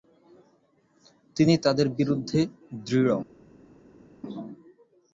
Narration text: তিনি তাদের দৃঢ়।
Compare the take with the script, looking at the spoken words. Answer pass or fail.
fail